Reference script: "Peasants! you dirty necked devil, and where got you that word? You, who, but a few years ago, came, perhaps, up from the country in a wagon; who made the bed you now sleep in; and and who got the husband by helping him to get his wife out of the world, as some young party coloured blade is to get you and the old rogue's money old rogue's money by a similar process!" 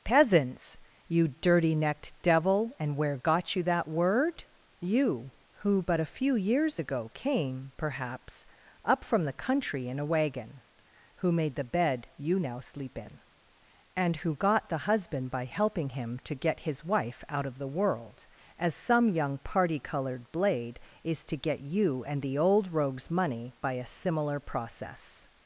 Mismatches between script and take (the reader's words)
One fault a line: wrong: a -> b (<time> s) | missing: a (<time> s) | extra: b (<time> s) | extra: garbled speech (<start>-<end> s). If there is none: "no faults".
missing: and (14.2 s)
missing: old rogue's money (23.5 s)